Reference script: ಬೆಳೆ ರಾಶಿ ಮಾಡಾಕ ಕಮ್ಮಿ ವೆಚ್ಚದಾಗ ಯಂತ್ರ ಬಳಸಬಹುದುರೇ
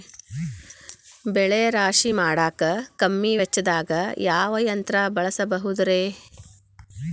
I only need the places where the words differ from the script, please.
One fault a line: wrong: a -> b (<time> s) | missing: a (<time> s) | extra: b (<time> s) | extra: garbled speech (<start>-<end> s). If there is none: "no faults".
extra: ಯಾವ (4.2 s)